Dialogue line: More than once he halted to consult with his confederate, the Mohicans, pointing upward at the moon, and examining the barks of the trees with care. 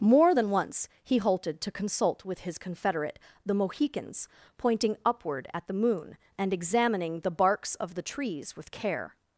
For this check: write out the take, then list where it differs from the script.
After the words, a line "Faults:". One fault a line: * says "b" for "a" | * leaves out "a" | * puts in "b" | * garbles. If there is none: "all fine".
More than once he halted to consult with his confederate, the Mohicans, pointing upward at the moon, and examining the barks of the trees with care.
Faults:
all fine